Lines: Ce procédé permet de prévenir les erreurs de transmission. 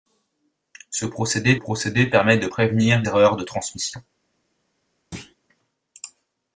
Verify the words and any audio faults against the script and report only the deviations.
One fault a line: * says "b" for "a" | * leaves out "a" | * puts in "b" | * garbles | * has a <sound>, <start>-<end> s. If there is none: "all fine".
* puts in "procédé"
* leaves out "les"
* has a thud, 5.1-5.4 s